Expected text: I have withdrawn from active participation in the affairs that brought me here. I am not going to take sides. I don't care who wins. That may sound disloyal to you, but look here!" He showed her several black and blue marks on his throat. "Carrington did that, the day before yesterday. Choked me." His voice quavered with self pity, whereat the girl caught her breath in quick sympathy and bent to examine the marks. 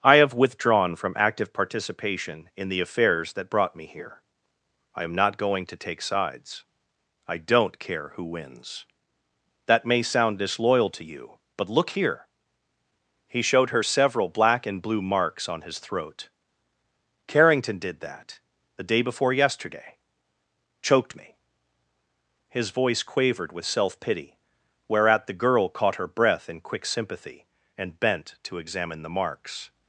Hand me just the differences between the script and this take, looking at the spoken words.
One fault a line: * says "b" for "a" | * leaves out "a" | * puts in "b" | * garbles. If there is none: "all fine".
all fine